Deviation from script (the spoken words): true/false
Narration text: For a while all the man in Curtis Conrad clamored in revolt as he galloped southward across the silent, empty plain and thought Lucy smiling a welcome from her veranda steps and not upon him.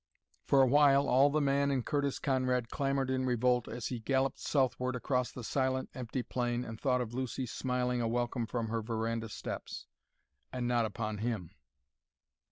true